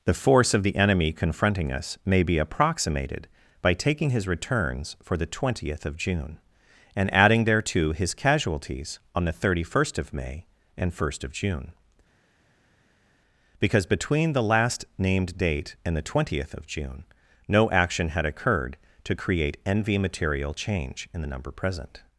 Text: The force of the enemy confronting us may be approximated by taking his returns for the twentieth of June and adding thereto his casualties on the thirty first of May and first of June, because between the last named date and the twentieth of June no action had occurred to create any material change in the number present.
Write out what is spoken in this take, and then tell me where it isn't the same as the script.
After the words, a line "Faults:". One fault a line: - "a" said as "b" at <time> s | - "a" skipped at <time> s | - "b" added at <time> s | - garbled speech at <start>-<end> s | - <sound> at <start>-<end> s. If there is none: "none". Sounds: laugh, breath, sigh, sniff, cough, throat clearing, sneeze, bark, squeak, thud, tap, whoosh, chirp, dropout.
The force of the enemy confronting us may be approximated by taking his returns for the twentieth of June and adding thereto his casualties on the thirty first of May and first of June, because between the last named date and the twentieth of June no action had occurred to create envy material change in the number present.
Faults:
- "any" said as "envy" at 19.6 s